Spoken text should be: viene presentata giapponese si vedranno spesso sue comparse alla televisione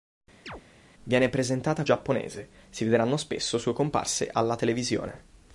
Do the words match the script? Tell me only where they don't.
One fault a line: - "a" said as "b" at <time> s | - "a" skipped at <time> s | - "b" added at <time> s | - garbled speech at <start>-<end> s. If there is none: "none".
none